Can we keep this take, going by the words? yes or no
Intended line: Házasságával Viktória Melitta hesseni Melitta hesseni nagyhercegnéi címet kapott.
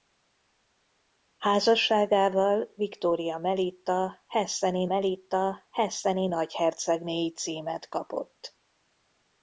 yes